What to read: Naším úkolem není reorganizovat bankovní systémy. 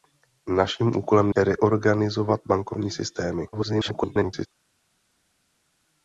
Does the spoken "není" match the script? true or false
false